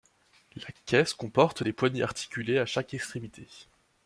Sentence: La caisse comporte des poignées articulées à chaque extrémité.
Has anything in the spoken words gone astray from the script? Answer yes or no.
no